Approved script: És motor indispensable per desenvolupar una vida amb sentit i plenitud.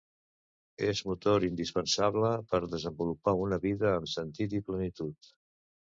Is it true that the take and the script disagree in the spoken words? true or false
false